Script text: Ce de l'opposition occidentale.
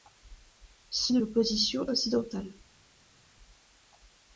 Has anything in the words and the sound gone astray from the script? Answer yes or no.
no